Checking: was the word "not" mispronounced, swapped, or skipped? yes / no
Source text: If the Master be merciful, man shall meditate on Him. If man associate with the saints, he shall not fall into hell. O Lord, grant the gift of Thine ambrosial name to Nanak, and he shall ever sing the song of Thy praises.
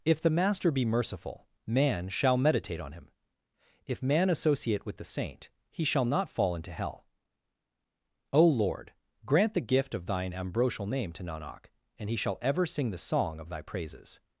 no